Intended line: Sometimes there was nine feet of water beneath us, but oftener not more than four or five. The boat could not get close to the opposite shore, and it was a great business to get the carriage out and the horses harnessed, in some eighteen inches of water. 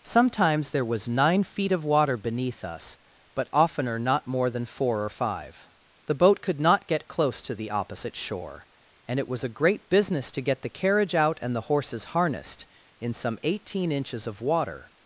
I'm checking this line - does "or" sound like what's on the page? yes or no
yes